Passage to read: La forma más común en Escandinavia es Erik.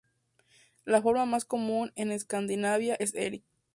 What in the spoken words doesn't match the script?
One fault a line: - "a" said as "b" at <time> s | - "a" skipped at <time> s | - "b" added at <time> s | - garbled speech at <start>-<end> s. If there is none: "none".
none